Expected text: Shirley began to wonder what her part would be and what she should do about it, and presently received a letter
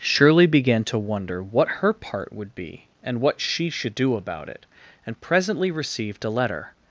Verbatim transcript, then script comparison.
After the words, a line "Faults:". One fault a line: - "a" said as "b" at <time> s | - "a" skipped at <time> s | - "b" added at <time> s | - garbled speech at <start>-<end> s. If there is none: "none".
Shirley began to wonder what her part would be and what she should do about it, and presently received a letter
Faults:
none